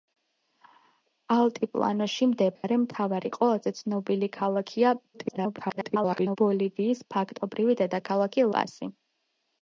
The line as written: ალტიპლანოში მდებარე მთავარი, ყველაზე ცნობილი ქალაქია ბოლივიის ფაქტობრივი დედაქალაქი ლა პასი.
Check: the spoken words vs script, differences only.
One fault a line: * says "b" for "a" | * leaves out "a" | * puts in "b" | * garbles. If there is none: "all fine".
* garbles
* leaves out "ლა"